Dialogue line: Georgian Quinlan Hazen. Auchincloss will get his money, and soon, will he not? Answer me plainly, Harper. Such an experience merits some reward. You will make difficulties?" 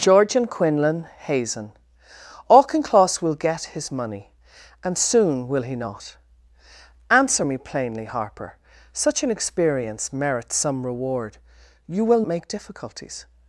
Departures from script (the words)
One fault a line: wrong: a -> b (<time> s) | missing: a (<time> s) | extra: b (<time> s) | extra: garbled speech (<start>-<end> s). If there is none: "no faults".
no faults